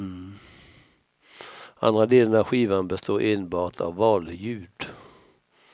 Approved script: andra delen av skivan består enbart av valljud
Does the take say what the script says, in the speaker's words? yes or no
yes